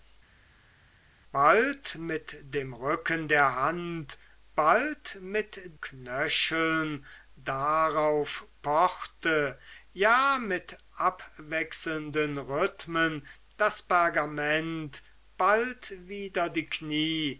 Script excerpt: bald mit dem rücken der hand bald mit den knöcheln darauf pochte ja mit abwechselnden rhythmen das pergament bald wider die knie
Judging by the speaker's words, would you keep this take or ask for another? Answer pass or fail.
fail